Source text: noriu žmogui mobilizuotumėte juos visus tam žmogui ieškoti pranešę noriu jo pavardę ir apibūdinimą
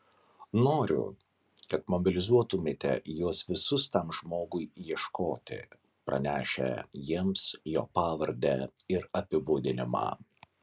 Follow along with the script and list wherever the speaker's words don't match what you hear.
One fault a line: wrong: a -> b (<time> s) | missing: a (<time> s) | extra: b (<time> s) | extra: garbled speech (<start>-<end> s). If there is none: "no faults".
wrong: žmogui -> kad (1.7 s)
wrong: noriu -> jiems (7.1 s)